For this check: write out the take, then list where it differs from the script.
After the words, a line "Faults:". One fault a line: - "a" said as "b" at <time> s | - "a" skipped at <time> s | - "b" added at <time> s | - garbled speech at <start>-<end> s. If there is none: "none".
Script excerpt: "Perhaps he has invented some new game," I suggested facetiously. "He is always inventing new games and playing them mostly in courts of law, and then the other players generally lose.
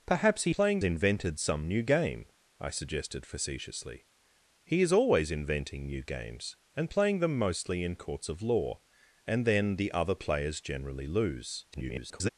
"Perhaps he playing invented some new game," I suggested facetiously. "He is always inventing new games and playing them mostly in courts of law, and then the other players generally lose. [garbled]
Faults:
- "has" said as "playing" at 0.5 s
- garbled speech at 11.7-12.3 s